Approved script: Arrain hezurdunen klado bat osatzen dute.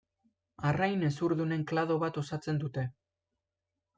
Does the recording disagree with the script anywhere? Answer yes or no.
no